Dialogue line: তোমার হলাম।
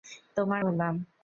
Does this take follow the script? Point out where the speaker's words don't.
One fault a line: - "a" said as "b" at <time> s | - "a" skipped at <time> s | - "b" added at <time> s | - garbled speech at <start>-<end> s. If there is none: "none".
none